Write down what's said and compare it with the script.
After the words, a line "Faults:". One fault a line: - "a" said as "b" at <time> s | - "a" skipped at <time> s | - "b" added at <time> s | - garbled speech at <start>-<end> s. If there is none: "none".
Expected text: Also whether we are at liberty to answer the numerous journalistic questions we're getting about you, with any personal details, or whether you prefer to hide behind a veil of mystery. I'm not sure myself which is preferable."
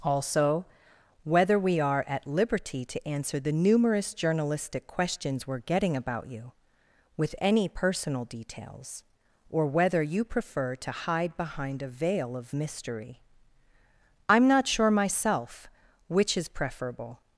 Also whether we are at liberty to answer the numerous journalistic questions we're getting about you, with any personal details, or whether you prefer to hide behind a veil of mystery. I'm not sure myself which is preferable."
Faults:
none